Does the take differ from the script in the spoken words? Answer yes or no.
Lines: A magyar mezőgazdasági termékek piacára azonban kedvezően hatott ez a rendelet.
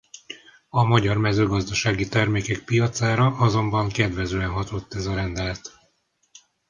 no